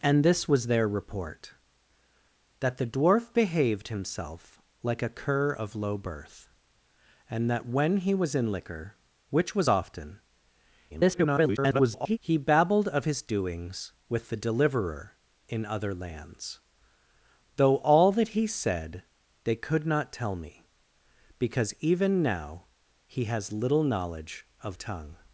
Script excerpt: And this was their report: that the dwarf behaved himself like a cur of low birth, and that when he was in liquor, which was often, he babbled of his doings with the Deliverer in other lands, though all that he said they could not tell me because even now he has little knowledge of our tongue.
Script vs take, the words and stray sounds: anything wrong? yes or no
yes